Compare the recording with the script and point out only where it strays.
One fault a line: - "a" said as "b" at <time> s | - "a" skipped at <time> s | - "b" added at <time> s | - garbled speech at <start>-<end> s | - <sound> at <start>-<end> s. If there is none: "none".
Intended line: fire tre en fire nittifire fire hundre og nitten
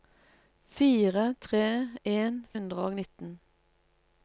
- "fire nittifire fire" skipped at 2.4 s